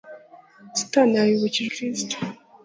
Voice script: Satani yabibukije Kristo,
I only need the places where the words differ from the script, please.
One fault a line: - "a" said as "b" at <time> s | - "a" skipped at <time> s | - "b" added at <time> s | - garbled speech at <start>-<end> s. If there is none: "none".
none